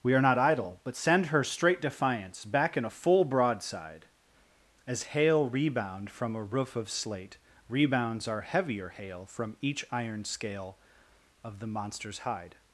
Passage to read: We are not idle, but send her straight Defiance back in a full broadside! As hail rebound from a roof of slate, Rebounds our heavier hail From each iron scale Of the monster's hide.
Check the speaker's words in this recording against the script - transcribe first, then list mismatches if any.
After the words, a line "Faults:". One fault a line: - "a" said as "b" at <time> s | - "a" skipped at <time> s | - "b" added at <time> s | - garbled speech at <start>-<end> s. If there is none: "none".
We are not idle, but send her straight Defiance back in a full broadside! As hail rebound from a roof of slate, Rebounds our heavier hail From each iron scale Of the monster's hide.
Faults:
none